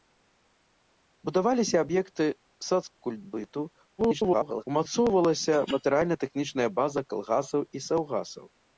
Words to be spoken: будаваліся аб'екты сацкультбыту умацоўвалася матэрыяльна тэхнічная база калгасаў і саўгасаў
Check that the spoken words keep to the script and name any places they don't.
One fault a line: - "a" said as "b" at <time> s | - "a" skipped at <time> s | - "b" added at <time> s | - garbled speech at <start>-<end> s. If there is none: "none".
- garbled speech at 4.0-4.6 s